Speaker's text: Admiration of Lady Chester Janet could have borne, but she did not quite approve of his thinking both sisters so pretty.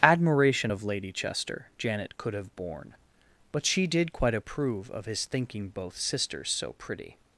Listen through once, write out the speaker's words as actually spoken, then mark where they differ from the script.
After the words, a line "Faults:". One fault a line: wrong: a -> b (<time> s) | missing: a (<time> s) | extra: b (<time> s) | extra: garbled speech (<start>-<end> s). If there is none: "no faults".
Admiration of Lady Chester Janet could have borne, but she did quite approve of his thinking both sisters so pretty.
Faults:
missing: not (4.1 s)